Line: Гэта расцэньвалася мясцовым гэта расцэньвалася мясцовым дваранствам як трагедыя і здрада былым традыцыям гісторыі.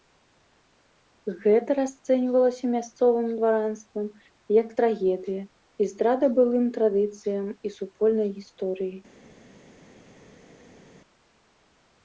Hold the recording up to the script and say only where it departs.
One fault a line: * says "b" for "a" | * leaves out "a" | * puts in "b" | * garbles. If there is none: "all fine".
* leaves out "гэта расцэньвалася мясцовым"
* puts in "і супольнай"